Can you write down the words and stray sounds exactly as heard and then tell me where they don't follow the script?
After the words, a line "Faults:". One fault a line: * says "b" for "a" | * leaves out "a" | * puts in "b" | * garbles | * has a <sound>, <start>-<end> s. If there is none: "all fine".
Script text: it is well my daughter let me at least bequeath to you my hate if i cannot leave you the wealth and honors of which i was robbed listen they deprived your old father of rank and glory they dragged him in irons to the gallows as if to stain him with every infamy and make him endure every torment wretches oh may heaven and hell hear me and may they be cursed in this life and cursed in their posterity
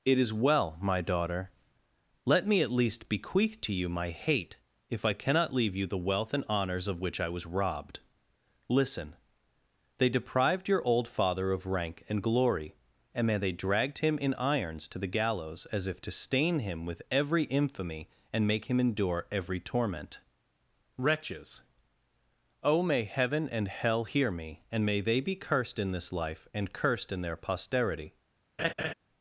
it is well my daughter let me at least bequeath to you my hate if i cannot leave you the wealth and honors of which i was robbed listen they deprived your old father of rank and glory and may they dragged him in irons to the gallows as if to stain him with every infamy and make him endure every torment wretches oh may heaven and hell hear me and may they be cursed in this life and cursed in their posterity
Faults:
* puts in "and may"
* has a laugh, 28.6-28.9 s